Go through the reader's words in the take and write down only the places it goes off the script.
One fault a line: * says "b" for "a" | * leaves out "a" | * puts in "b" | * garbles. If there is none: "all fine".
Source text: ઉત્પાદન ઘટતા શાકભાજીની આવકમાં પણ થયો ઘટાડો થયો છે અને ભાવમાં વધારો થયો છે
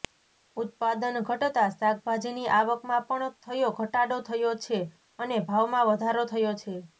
all fine